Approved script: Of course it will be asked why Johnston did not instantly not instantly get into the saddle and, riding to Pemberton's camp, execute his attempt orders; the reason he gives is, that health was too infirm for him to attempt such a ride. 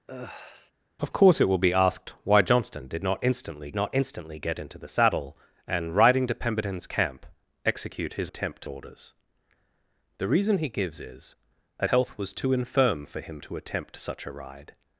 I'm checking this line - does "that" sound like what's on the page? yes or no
yes